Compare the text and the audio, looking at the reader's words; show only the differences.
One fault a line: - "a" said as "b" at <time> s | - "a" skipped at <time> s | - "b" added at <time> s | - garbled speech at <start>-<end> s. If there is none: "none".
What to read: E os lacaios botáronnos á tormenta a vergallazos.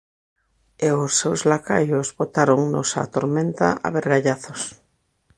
- "seus" added at 1.2 s